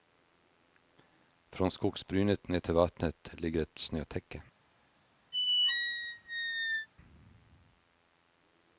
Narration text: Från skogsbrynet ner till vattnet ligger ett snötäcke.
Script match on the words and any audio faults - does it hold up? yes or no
no